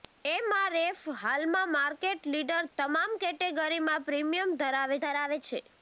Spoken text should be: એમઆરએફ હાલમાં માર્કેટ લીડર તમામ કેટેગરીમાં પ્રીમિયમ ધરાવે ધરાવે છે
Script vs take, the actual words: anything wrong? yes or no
no